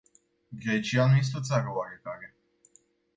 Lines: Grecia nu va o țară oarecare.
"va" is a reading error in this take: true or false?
true